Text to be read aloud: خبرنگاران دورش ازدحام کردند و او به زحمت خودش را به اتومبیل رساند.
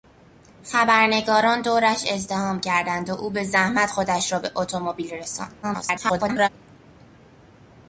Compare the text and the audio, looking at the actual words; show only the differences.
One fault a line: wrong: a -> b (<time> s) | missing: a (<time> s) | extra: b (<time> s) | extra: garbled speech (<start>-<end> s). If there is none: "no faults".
extra: garbled speech (5.6-6.5 s)